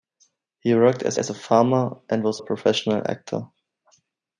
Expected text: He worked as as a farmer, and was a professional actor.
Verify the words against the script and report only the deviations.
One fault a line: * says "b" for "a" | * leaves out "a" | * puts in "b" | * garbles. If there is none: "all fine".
all fine